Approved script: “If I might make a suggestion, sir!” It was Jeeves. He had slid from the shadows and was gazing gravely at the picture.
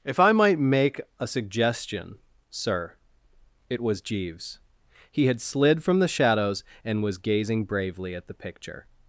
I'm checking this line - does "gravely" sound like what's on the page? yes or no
no